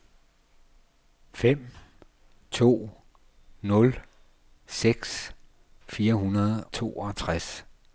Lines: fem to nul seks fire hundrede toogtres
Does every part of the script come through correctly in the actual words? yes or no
yes